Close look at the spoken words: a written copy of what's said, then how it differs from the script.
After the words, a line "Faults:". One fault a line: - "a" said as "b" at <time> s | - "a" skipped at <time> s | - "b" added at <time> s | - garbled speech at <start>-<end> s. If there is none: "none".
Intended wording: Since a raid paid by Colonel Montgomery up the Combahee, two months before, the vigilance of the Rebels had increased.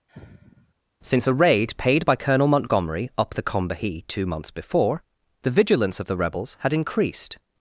Since a raid paid by Colonel Montgomery up the Combahee, two months before, the vigilance of the Rebels had increased.
Faults:
none